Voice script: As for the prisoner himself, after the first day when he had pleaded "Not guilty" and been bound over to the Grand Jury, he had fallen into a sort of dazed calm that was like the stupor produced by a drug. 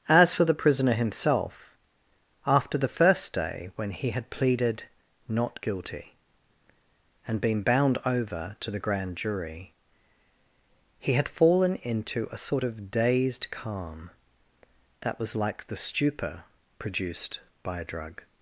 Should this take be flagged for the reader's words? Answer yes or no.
no